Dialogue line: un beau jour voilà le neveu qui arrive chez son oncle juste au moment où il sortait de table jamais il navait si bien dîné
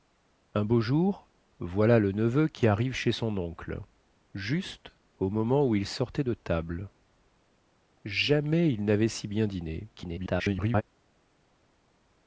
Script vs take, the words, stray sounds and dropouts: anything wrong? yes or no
yes